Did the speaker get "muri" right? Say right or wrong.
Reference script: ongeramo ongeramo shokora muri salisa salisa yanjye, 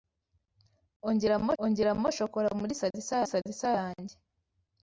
right